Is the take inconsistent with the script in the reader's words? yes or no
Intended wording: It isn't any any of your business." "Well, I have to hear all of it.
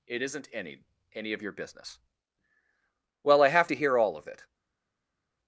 no